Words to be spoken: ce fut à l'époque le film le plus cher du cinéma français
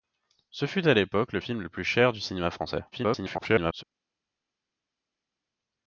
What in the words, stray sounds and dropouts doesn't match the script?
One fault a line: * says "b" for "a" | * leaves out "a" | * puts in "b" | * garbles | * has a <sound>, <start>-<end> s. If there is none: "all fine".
* garbles